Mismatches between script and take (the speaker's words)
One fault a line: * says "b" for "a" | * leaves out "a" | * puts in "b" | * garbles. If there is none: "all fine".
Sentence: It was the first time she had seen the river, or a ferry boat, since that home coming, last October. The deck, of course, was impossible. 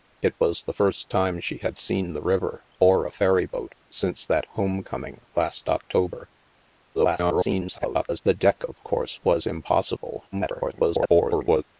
* garbles
* garbles